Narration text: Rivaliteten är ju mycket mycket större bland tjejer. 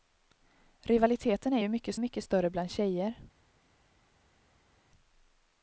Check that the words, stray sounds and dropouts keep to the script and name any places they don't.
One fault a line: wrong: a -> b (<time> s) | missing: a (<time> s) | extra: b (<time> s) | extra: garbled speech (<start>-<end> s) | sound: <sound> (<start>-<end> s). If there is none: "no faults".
no faults